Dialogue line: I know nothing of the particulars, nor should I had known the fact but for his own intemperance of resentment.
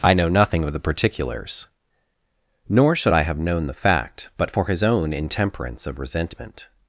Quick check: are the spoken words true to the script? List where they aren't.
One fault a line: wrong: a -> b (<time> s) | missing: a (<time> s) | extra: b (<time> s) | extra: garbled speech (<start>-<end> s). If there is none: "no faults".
wrong: had -> have (3.2 s)